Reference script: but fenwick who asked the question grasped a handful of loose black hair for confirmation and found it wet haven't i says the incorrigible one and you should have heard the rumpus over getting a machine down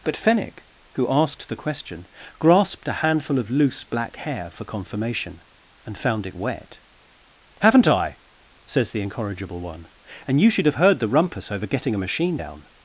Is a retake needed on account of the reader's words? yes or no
no